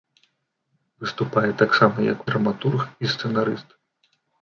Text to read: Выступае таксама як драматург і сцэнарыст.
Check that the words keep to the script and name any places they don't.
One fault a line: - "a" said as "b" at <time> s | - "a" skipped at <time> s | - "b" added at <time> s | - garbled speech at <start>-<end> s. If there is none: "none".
none